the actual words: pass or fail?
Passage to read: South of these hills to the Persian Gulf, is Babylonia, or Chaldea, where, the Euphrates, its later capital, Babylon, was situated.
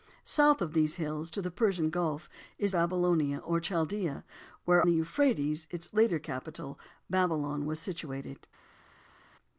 pass